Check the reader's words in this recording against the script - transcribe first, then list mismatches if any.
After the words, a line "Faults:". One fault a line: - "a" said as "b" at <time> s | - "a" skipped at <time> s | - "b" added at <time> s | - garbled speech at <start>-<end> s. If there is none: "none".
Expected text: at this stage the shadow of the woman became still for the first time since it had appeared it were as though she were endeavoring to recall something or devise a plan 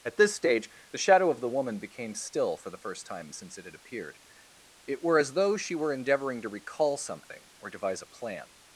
at this stage the shadow of the woman became still for the first time since it had appeared it were as though she were endeavoring to recall something or devise a plan
Faults:
none